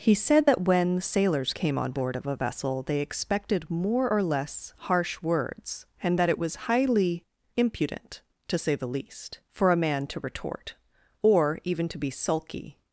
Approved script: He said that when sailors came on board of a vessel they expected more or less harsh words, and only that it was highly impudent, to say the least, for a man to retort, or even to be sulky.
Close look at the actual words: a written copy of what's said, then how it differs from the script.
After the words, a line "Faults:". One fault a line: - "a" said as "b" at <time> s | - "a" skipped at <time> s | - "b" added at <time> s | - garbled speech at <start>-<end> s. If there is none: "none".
He said that when sailors came on board of a vessel they expected more or less harsh words, and that it was highly impudent, to say the least, for a man to retort, or even to be sulky.
Faults:
- "only" skipped at 6.2 s